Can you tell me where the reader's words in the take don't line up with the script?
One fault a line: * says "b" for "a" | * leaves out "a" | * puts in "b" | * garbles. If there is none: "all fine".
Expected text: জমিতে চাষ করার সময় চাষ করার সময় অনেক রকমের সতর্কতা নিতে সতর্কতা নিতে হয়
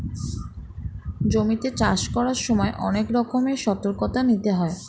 * leaves out "চাষ করার সময়"
* leaves out "সতর্কতা নিতে"